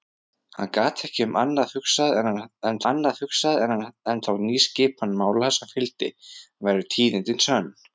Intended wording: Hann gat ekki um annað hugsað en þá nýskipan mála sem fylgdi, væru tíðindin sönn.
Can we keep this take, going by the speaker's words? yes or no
no